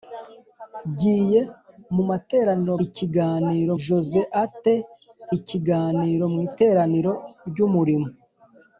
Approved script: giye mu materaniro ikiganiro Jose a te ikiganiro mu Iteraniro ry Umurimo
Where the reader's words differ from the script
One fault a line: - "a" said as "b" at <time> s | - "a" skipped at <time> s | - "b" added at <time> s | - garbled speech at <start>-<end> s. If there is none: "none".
none